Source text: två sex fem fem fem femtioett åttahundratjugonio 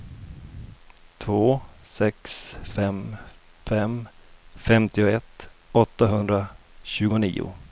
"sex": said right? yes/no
yes